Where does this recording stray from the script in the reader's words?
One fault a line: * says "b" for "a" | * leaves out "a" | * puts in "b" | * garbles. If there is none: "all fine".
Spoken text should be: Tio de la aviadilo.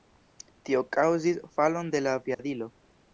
* puts in "kaŭzis falon"